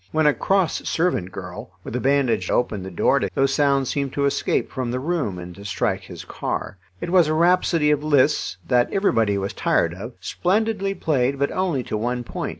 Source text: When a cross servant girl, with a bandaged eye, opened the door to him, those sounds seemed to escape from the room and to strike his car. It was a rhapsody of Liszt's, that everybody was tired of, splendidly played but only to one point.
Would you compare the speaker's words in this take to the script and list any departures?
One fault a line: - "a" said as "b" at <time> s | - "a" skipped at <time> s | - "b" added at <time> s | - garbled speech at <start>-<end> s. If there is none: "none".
- "eye" skipped at 2.5 s
- "him" skipped at 3.3 s